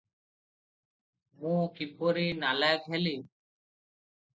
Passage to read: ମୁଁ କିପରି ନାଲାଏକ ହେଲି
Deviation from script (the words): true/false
false